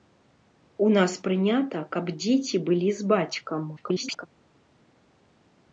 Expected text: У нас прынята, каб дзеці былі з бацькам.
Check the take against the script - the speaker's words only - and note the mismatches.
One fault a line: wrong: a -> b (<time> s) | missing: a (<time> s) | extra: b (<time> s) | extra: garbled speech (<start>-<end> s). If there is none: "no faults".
extra: garbled speech (3.8-4.3 s)